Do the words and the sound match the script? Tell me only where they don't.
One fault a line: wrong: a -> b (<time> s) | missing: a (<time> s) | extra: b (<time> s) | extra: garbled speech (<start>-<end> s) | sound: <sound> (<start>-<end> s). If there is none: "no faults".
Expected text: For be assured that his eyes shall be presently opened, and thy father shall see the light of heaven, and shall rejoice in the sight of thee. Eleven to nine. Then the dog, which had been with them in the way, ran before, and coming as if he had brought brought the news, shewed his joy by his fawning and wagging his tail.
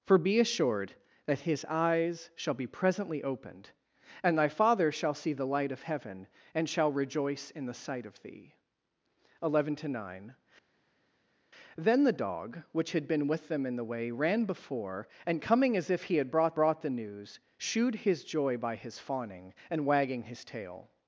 no faults